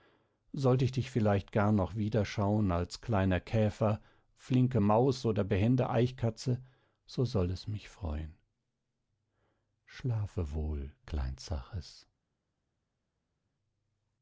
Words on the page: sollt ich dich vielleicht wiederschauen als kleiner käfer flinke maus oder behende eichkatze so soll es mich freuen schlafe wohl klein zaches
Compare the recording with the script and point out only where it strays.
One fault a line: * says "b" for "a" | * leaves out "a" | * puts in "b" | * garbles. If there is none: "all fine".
* puts in "gar noch"